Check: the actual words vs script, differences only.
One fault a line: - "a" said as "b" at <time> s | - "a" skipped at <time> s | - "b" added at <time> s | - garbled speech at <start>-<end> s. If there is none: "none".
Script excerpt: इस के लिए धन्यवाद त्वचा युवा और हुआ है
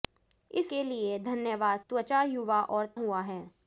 none